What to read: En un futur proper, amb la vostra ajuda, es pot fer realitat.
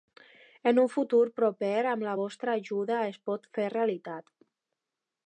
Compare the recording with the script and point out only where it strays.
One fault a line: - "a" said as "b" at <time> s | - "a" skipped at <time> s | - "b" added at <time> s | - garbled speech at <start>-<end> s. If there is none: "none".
none